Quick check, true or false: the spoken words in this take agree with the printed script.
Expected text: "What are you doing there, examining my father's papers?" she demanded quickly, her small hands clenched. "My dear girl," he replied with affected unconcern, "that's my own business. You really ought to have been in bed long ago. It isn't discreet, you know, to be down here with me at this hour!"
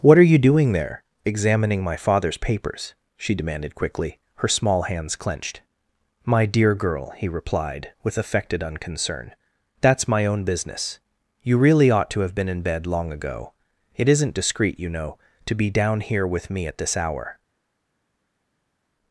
true